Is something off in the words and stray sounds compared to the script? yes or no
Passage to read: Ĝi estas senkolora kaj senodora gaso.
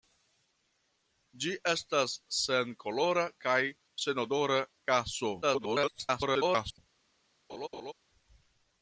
yes